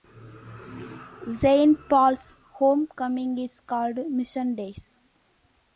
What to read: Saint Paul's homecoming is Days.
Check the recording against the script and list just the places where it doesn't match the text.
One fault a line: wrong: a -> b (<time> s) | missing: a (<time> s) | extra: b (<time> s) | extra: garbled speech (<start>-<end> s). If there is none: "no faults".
extra: called Mission (3.6 s)